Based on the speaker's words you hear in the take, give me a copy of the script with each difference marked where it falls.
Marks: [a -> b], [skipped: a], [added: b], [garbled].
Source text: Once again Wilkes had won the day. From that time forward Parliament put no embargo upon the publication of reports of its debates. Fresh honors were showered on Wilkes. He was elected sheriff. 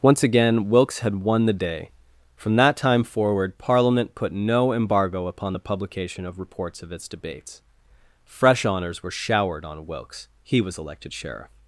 Once again Wilkes had won the day. From that time forward Parliament put no embargo upon the publication of reports of its debates. Fresh honors were showered on Wilkes. He was elected sheriff.